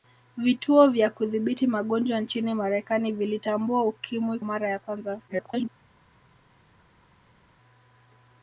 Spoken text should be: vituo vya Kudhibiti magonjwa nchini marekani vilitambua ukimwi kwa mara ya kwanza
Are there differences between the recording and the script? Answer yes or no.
yes